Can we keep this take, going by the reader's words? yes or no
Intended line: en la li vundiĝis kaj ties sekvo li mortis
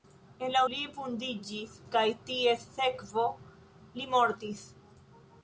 yes